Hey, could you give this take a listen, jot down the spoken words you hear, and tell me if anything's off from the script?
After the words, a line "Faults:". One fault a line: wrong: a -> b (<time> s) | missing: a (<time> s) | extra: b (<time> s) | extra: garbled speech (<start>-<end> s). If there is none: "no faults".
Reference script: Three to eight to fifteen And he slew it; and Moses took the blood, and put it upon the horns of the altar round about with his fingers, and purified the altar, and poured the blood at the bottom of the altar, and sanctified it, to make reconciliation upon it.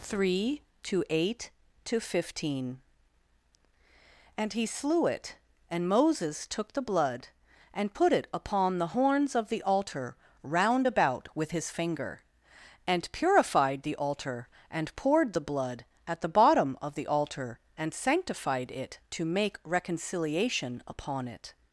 Three to eight to fifteen And he slew it; and Moses took the blood, and put it upon the horns of the altar round about with his finger, and purified the altar, and poured the blood at the bottom of the altar, and sanctified it, to make reconciliation upon it.
Faults:
wrong: fingers -> finger (11.7 s)